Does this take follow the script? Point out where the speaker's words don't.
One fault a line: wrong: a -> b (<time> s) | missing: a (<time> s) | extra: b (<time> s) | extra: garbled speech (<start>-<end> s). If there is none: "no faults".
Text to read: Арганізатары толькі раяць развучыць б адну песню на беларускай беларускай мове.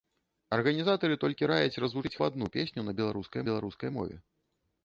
no faults